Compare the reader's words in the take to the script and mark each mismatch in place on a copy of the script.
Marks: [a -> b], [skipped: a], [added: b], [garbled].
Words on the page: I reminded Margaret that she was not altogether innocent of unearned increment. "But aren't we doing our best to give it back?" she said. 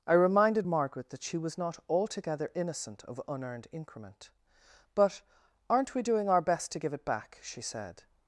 I reminded Margaret that she was not altogether innocent of unearned increment. "But aren't we doing our best to give it back?" she said.